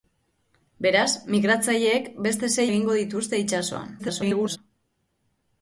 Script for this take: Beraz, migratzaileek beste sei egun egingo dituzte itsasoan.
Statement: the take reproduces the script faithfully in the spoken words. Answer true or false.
false